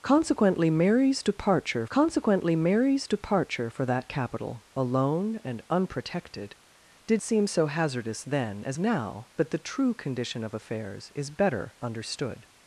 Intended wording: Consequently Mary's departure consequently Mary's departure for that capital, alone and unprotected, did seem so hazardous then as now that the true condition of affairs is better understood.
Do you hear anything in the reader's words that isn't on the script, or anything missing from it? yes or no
no